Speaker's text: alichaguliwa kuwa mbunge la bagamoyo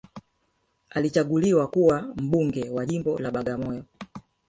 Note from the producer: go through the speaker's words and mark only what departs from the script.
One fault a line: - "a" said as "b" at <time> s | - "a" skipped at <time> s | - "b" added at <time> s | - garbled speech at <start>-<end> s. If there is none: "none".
- "wa jimbo" added at 2.7 s